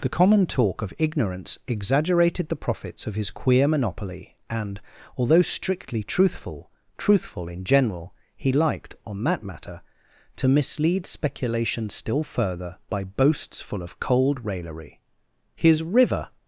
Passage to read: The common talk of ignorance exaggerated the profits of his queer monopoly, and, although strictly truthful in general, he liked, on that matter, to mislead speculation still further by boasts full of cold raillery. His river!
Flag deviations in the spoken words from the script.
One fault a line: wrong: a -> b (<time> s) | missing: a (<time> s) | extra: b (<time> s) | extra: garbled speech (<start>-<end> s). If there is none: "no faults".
extra: truthful (7.0 s)